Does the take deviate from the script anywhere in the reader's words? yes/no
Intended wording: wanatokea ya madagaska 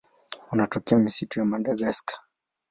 yes